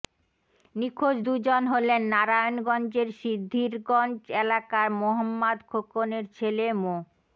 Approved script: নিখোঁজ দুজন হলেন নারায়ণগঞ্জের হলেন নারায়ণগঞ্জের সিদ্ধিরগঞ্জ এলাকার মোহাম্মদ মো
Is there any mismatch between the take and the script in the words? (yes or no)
yes